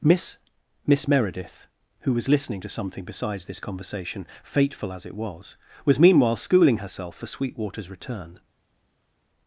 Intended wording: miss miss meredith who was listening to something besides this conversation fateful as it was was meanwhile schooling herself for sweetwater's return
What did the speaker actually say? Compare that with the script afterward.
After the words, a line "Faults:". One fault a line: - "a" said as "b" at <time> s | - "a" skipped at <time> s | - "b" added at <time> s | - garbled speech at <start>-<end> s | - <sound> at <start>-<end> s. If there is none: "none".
miss miss meredith who was listening to something besides this conversation fateful as it was was meanwhile schooling herself for sweetwater's return
Faults:
none